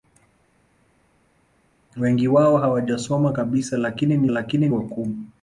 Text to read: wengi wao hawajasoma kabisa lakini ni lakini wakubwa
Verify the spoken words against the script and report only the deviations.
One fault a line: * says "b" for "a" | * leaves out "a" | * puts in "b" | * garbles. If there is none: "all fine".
all fine